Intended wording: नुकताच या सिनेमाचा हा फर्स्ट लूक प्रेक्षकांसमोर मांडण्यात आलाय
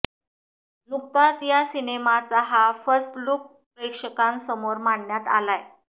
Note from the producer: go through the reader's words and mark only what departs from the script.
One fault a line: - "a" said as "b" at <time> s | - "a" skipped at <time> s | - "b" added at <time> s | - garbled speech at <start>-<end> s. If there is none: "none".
none